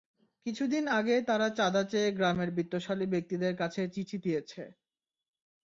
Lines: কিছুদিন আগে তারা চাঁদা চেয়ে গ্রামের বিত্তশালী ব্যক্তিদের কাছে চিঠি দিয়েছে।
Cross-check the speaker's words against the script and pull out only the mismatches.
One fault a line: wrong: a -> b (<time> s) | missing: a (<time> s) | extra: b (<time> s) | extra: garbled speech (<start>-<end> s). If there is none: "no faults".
no faults